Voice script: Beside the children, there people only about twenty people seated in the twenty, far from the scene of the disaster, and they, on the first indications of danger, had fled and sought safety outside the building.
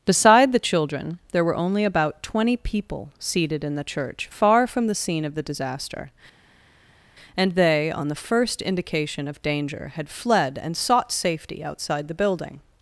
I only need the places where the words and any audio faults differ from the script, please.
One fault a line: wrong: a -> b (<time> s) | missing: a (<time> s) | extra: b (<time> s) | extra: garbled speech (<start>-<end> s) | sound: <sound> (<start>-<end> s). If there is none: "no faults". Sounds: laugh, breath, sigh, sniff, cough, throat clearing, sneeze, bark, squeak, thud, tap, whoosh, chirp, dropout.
wrong: people -> were (1.4 s)
wrong: twenty -> church (3.8 s)
wrong: indications -> indication (8.6 s)